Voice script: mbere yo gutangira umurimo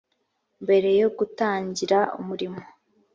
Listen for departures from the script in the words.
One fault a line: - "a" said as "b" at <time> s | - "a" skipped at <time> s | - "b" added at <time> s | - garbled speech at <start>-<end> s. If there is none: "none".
none